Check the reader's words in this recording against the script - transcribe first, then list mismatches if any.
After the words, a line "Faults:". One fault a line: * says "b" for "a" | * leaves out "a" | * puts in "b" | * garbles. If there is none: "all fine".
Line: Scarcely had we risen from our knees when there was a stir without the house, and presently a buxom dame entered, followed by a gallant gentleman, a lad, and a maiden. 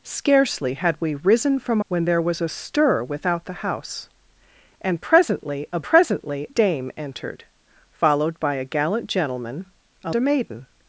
Scarcely had we risen from when there was a stir without the house, and presently a presently dame entered, followed by a gallant gentleman, a a maiden.
Faults:
* leaves out "our knees"
* says "presently" for "buxom"
* leaves out "lad and"